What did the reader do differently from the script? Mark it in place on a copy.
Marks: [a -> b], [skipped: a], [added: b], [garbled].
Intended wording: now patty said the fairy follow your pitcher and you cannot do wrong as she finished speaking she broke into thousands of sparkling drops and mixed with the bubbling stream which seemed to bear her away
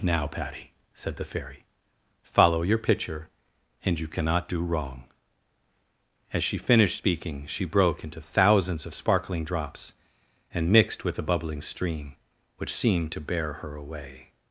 now patty said the fairy follow your pitcher and you cannot do wrong as she finished speaking she broke into thousands of sparkling drops and mixed with the bubbling stream which seemed to bear her away